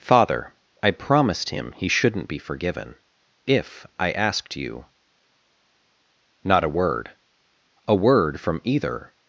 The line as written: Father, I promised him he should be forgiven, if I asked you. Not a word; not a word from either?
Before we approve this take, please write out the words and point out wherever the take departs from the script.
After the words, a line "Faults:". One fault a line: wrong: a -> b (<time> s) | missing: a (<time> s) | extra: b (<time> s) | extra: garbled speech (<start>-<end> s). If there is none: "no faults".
Father, I promised him he shouldn't be forgiven, if I asked you. Not a word; a word from either?
Faults:
wrong: should -> shouldn't (1.9 s)
missing: not (7.1 s)